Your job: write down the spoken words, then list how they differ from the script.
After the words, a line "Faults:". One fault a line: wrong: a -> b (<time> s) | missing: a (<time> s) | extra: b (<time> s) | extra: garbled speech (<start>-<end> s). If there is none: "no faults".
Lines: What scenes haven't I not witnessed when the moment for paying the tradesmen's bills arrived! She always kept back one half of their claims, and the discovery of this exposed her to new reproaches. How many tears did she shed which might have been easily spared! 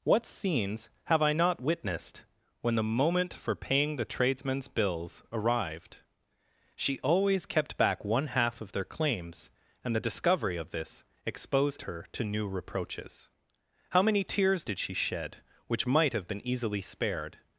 What scenes have I not witnessed when the moment for paying the tradesmen's bills arrived! She always kept back one half of their claims, and the discovery of this exposed her to new reproaches. How many tears did she shed which might have been easily spared!
Faults:
wrong: haven't -> have (1.1 s)